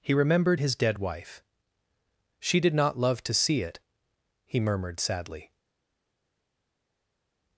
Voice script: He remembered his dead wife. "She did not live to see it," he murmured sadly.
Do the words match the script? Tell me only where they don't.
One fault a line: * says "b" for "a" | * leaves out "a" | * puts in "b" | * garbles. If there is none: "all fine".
* says "love" for "live"